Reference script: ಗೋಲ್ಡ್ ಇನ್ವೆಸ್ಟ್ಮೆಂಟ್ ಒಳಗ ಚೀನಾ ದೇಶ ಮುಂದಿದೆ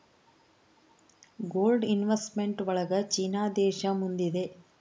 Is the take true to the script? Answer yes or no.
yes